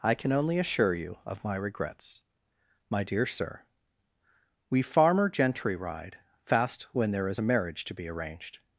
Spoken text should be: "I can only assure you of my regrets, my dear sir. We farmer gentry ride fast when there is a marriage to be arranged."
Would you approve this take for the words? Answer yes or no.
yes